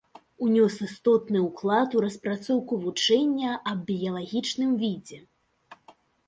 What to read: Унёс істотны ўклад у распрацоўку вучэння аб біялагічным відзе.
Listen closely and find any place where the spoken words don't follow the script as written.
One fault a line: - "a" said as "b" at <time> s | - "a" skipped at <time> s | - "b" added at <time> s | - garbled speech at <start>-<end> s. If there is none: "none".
none